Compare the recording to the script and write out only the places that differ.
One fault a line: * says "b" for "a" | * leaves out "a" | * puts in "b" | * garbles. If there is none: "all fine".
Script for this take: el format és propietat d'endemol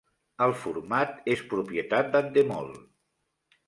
all fine